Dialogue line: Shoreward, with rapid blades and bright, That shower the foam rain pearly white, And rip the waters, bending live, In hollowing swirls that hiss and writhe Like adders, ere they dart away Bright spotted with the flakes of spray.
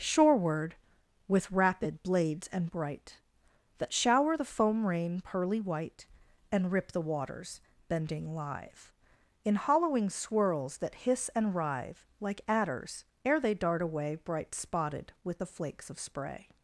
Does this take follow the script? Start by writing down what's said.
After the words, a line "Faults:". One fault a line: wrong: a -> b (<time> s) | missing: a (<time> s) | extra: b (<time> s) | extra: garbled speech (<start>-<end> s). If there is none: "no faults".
Shoreward, with rapid blades and bright, That shower the foam rain pearly white, And rip the waters, bending live, In hollowing swirls that hiss and writhe Like adders, ere they dart away Bright spotted with the flakes of spray.
Faults:
no faults